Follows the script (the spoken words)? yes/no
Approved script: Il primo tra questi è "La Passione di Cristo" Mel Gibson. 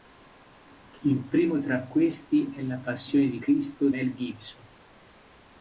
yes